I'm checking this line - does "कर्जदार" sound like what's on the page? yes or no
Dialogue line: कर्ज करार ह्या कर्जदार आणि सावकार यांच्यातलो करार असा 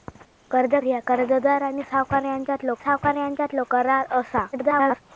yes